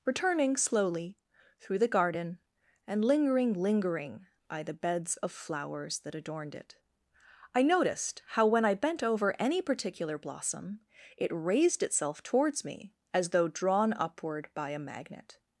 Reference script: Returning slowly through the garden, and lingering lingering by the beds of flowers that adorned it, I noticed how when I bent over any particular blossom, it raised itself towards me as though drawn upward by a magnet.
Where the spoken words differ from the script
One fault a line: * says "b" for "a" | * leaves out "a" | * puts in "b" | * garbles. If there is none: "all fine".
all fine